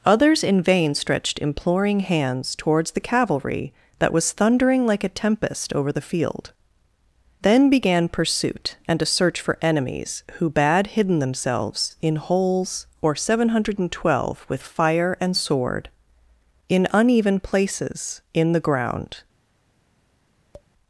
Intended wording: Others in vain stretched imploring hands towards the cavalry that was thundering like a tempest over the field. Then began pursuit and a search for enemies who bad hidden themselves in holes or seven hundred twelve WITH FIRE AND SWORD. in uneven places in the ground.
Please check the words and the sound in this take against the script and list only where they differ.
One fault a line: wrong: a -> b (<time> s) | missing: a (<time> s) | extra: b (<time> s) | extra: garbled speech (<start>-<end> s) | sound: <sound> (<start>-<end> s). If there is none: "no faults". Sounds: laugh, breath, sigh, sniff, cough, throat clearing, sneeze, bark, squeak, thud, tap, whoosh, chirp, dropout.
sound: tap (20.5-20.7 s)